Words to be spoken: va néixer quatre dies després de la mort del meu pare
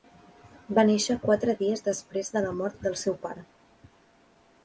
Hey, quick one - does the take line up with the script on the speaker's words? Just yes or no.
no